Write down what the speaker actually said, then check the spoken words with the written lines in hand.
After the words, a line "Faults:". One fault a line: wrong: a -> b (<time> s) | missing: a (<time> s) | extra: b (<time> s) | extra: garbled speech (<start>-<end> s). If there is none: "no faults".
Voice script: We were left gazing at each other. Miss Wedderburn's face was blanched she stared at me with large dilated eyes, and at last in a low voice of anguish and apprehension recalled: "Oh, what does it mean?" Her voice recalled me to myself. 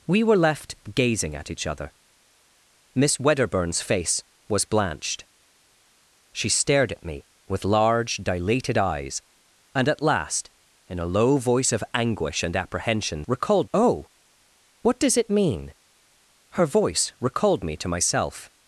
We were left gazing at each other. Miss Wedderburn's face was blanched she stared at me with large dilated eyes, and at last in a low voice of anguish and apprehension recalled: "Oh, what does it mean?" Her voice recalled me to myself.
Faults:
no faults